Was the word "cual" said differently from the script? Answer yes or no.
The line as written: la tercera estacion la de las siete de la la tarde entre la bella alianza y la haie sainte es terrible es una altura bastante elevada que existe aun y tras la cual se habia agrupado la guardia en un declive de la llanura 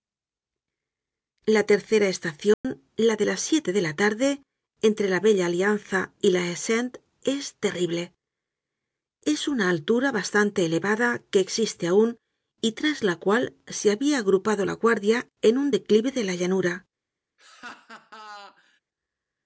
no